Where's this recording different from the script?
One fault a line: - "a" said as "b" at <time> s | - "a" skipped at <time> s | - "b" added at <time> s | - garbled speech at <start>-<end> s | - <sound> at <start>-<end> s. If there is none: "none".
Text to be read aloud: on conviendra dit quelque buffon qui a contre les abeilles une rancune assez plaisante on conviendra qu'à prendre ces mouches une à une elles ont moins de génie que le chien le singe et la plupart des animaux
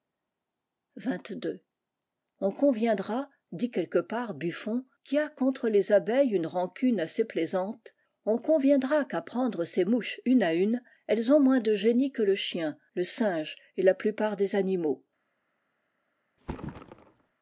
- "part" added at 4.0 s
- thud at 16.4-17.3 s